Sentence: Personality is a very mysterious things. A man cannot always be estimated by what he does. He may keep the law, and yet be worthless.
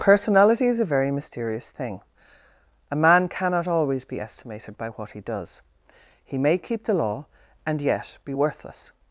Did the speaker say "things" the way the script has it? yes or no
no